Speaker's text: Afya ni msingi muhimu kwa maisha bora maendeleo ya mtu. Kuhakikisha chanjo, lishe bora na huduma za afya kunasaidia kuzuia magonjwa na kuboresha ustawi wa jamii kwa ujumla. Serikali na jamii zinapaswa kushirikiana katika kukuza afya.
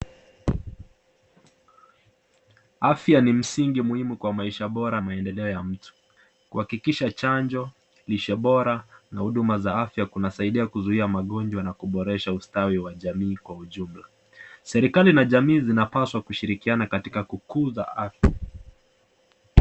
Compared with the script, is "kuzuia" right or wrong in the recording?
right